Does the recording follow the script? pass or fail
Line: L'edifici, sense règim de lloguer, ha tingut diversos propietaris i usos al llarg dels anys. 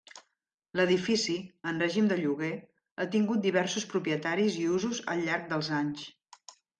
fail